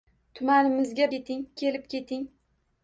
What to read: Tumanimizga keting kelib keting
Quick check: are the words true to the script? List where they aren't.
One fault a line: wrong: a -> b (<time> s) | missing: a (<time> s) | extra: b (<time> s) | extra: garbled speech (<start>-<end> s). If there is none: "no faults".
no faults